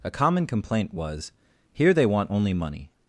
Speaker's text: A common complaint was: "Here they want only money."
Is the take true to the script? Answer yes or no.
yes